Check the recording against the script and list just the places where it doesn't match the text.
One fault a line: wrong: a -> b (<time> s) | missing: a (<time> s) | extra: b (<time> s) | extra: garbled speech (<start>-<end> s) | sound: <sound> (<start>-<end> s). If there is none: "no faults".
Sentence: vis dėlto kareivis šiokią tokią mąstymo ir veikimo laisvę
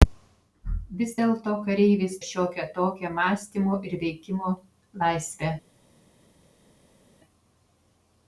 no faults